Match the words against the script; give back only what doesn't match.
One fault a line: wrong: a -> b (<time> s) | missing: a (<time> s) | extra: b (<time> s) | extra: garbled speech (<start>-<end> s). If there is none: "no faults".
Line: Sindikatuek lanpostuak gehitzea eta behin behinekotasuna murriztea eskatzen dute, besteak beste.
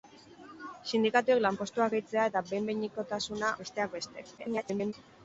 missing: murriztea eskatzen dute (3.5 s)
extra: garbled speech (4.4-4.9 s)